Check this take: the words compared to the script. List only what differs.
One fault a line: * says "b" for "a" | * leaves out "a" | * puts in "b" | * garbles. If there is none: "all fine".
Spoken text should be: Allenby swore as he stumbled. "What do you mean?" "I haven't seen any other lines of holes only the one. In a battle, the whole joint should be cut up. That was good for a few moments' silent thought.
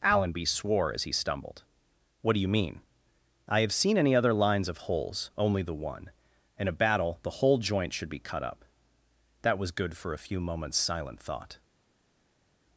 * says "have" for "haven't"